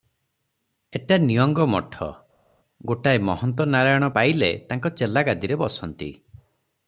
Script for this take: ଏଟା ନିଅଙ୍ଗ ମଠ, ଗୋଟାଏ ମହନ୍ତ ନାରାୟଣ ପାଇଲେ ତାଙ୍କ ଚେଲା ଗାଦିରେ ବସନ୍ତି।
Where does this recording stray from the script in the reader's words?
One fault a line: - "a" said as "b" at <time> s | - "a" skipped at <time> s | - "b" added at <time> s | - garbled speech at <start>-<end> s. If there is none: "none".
none